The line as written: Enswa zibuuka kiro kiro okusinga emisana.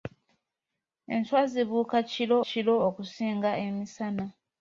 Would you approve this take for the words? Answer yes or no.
yes